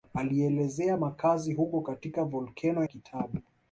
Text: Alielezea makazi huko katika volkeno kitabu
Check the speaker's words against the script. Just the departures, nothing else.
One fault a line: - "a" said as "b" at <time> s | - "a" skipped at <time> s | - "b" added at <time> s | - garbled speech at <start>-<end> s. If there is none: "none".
none